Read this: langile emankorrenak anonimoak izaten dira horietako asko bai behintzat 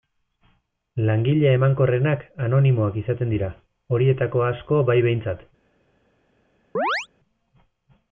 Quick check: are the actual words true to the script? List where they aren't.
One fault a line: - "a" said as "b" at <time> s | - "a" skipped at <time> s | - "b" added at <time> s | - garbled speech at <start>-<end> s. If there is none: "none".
none